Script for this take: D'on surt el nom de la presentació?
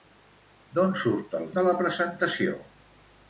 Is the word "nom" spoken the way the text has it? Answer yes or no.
no